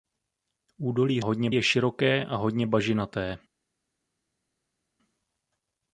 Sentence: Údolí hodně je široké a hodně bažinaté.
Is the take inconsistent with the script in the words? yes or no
no